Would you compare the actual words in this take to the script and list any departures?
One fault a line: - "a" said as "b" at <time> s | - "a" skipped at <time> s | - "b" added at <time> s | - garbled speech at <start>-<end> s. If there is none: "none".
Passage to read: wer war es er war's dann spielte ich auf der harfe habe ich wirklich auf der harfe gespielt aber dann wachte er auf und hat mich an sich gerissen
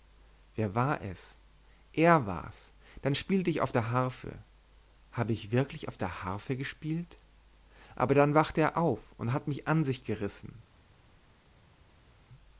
none